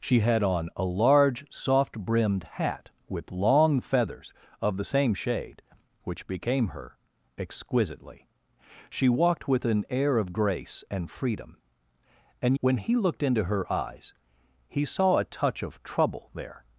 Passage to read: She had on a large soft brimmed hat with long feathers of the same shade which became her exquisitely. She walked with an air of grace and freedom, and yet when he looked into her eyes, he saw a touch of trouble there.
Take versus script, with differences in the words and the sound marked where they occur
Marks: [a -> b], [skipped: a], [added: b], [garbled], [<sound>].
She had on a large soft brimmed hat with long feathers of the same shade which became her exquisitely. She walked with an air of grace and freedom, and [skipped: yet] when he looked into her eyes, he saw a touch of trouble there.